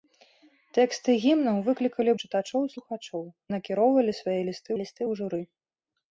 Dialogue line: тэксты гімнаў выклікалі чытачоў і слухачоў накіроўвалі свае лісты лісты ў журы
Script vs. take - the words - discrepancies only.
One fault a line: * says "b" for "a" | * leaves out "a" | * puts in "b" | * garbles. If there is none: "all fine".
all fine